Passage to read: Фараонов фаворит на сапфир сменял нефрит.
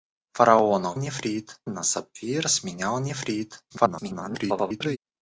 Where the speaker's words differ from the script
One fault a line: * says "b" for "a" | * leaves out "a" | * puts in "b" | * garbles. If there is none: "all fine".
* says "нефрит" for "фаворит"
* garbles